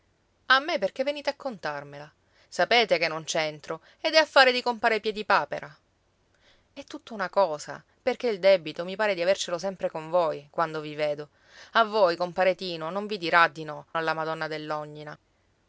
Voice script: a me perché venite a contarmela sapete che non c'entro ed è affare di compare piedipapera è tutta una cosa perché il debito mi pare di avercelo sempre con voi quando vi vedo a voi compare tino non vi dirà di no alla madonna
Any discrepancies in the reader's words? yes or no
no